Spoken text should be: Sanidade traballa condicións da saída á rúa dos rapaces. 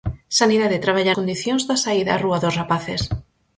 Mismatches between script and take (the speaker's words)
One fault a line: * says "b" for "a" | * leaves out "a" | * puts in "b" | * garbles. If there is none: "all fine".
all fine